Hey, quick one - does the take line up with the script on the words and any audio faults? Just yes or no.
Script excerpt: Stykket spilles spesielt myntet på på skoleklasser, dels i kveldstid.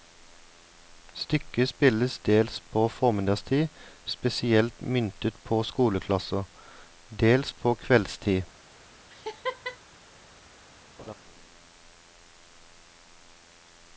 no